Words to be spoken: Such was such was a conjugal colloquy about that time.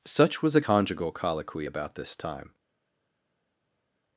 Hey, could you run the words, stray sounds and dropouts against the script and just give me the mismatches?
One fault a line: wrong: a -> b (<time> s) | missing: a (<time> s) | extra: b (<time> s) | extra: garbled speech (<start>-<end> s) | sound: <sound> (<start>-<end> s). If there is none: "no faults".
missing: such was (0.6 s)
wrong: that -> this (1.9 s)